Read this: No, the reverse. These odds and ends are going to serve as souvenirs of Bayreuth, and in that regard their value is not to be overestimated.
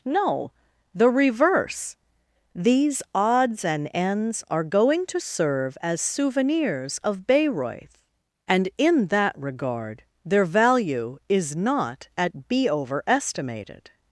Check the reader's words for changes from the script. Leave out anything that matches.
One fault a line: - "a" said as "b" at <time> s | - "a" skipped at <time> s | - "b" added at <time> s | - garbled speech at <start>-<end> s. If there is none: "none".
- "to" said as "at" at 12.2 s